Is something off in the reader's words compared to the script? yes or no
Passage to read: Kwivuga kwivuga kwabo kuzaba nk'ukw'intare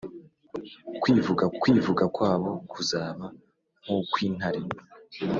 no